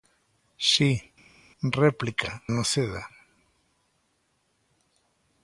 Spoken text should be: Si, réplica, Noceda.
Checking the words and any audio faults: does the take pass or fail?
pass